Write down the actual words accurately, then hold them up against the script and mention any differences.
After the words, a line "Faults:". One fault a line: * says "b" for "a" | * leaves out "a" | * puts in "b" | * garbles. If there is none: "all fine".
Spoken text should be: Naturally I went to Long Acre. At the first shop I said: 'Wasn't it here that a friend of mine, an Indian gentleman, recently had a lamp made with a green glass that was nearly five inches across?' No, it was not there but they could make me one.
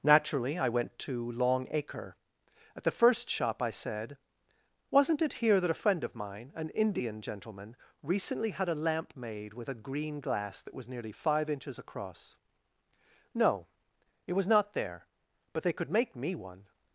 Naturally I went to Long Acre. At the first shop I said: 'Wasn't it here that a friend of mine, an Indian gentleman, recently had a lamp made with a green glass that was nearly five inches across?' No, it was not there but they could make me one.
Faults:
all fine